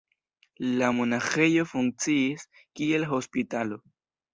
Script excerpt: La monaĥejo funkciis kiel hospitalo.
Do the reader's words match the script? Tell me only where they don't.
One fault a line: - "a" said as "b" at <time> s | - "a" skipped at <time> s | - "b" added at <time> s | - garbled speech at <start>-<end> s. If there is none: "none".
none